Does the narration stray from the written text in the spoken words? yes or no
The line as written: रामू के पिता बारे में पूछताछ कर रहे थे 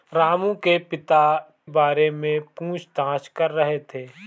no